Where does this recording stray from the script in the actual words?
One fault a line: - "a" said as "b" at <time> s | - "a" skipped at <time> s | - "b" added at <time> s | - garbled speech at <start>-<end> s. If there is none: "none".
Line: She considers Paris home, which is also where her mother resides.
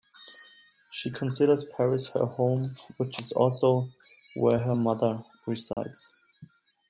- "her" added at 2.1 s